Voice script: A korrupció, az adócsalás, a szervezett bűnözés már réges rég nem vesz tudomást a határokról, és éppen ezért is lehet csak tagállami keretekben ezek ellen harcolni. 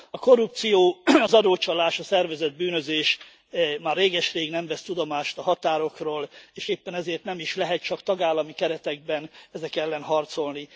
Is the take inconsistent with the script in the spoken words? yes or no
yes